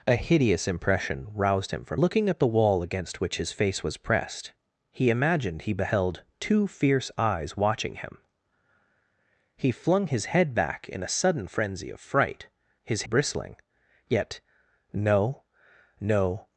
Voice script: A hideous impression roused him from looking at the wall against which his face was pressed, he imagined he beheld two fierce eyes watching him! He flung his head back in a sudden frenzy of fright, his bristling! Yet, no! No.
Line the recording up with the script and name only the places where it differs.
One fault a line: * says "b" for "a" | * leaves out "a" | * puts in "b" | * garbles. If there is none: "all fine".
all fine